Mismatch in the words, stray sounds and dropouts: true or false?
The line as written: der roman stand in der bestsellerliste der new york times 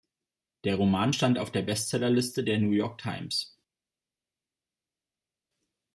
true